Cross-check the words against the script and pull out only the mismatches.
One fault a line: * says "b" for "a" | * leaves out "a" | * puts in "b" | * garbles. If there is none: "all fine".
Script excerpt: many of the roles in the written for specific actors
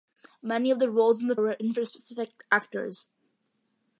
all fine